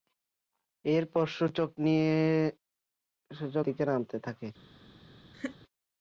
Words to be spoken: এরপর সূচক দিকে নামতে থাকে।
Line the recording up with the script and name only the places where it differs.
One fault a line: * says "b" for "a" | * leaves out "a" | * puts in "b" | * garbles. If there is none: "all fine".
all fine